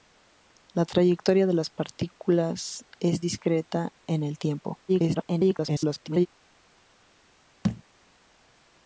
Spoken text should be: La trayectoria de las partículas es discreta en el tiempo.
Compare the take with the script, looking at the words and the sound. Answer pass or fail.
fail